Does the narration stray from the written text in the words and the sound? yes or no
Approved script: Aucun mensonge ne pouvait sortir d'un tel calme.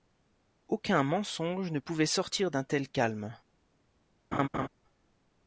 yes